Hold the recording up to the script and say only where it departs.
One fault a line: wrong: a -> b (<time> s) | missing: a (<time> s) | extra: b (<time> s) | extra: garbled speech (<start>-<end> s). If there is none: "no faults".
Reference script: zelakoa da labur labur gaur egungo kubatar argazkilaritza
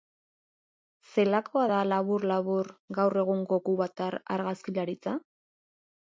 no faults